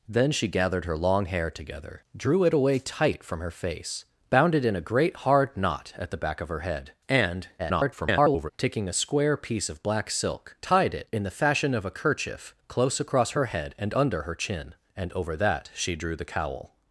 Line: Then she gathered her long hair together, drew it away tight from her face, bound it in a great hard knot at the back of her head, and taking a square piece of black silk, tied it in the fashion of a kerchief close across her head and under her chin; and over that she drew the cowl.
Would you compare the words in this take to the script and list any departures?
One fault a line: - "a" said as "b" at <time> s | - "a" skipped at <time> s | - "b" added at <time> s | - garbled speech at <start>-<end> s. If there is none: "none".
- garbled speech at 7.6-8.5 s